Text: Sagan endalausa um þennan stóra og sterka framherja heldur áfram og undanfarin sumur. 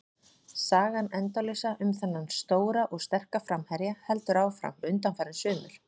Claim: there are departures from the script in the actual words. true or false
false